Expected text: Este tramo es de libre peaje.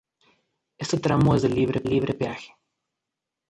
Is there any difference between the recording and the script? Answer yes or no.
yes